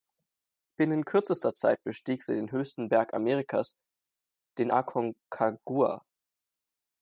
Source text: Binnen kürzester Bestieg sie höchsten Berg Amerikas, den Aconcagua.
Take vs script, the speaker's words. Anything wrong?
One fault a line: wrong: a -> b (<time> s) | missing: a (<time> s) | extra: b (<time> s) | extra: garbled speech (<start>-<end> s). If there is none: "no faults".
extra: Zeit (1.5 s)
extra: den (2.3 s)